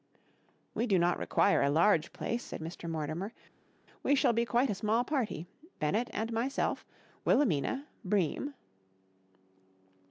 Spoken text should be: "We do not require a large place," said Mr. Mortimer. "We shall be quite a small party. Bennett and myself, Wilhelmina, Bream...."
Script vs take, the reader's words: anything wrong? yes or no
no